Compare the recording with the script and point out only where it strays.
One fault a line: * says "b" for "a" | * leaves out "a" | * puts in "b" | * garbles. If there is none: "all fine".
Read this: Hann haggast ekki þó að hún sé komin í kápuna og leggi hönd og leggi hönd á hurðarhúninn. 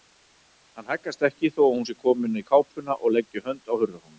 * leaves out "og leggi hönd"